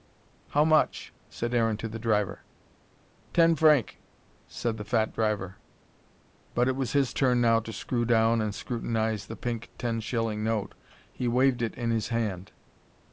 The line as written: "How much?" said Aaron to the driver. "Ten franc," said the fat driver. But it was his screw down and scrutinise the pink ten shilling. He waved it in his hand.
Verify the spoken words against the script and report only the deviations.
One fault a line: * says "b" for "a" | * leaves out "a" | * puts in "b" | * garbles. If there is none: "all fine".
* puts in "turn now to"
* puts in "note"